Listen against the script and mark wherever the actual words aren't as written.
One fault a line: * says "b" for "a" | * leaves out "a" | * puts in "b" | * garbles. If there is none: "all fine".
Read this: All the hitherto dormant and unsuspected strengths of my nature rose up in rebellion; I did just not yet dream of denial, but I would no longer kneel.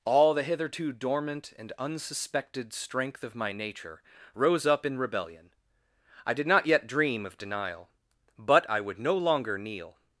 * says "strength" for "strengths"
* leaves out "just"